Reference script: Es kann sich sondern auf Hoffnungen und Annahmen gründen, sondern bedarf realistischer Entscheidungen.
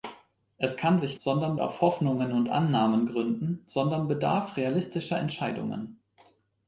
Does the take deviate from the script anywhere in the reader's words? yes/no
no